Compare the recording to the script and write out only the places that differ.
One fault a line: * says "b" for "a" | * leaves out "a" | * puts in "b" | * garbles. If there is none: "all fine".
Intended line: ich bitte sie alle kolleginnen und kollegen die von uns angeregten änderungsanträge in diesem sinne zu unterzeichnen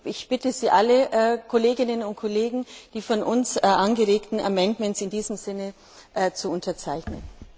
all fine